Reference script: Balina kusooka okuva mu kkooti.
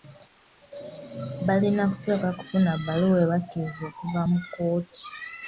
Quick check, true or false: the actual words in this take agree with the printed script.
false